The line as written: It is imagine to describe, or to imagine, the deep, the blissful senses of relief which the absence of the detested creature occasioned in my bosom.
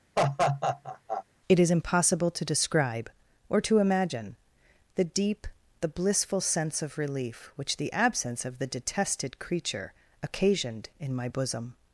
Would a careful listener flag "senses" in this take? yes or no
yes